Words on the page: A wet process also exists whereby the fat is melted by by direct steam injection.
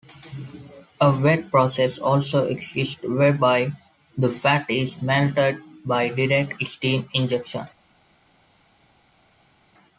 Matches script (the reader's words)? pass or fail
fail